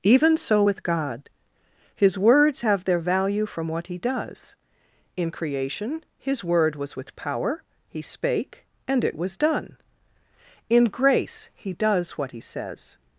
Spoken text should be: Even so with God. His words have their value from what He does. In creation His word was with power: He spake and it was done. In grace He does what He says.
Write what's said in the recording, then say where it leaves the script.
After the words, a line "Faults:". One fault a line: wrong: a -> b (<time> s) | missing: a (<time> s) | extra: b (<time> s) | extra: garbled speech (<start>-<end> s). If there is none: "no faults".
Even so with God. His words have their value from what He does. In creation His word was with power: He spake and it was done. In grace He does what He says.
Faults:
no faults